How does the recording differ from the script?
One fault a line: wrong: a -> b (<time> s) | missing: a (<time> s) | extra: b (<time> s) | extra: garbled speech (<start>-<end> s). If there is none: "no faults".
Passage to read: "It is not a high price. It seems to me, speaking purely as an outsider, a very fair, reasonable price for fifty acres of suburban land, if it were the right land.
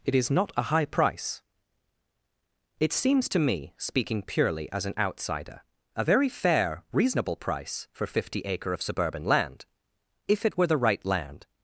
wrong: acres -> acre (8.4 s)